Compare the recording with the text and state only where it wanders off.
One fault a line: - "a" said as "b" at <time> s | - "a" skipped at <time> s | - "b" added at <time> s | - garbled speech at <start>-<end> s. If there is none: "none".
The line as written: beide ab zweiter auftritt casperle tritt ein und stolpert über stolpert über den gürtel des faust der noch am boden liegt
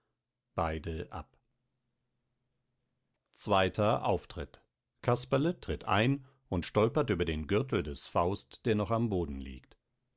- "stolpert über" skipped at 7.3 s